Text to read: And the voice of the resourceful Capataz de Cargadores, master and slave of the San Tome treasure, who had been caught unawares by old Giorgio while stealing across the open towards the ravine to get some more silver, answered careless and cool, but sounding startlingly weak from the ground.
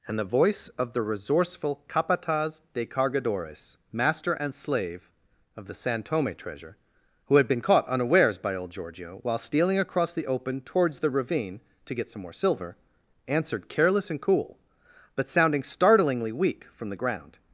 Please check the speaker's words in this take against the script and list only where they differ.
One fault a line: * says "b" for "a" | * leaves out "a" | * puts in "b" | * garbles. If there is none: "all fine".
all fine